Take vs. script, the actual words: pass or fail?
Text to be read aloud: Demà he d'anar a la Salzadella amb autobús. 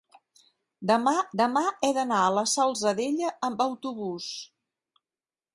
fail